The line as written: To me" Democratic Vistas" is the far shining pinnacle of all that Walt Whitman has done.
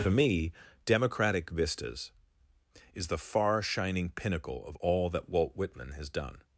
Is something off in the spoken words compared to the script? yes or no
yes